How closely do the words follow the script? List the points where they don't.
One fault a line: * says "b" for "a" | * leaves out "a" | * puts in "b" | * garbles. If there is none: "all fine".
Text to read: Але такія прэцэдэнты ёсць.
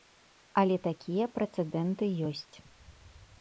all fine